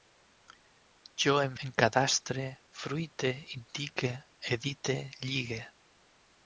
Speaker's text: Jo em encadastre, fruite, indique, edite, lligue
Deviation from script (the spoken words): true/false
false